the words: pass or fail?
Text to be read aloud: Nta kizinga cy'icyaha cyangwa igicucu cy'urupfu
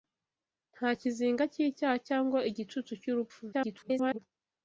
fail